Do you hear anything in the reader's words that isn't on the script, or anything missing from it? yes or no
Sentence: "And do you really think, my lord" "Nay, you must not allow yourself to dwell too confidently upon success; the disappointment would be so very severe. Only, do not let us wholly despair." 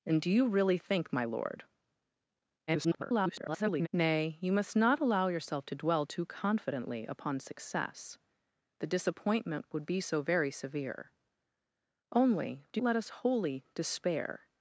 yes